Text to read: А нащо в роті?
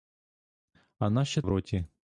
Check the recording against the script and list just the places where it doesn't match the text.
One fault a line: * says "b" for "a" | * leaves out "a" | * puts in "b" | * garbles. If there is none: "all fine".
all fine